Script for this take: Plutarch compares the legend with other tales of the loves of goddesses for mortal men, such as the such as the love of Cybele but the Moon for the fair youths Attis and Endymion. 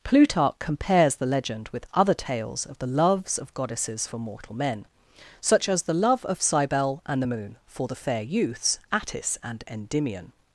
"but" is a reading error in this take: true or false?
true